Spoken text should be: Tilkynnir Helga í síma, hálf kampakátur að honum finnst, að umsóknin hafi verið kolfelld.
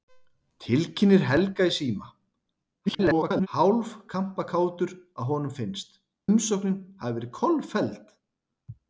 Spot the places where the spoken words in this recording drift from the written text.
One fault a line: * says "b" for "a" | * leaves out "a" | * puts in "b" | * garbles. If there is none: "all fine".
* garbles
* leaves out "að"